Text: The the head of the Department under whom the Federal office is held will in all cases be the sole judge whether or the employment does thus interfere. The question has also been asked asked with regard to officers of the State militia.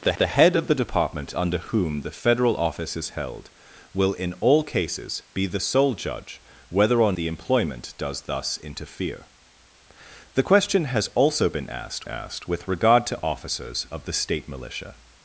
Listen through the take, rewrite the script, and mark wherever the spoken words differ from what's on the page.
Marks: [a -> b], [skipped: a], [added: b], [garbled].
The the head of the Department under whom the Federal office is held will in all cases be the sole judge whether or the employment does thus interfere. The question has also been asked asked with regard to officers of the State militia.